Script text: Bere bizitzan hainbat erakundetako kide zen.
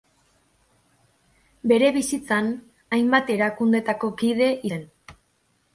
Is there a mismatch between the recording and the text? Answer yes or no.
no